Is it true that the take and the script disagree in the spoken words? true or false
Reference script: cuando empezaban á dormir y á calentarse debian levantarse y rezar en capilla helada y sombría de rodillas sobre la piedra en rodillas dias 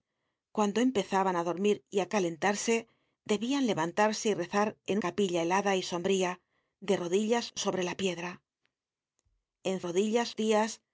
false